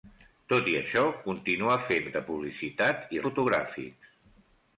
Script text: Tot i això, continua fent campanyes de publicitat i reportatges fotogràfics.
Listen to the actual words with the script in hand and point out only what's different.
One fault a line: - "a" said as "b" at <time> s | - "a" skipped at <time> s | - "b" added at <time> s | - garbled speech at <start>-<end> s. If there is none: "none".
- "campanyes" skipped at 2.1 s
- "reportatges" skipped at 3.2 s